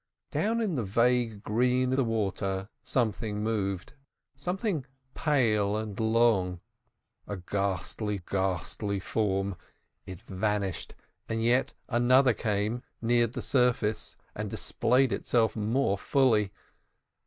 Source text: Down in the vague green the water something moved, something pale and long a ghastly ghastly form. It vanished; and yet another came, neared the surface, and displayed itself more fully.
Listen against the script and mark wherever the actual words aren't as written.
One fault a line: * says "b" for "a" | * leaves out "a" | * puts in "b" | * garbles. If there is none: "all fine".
all fine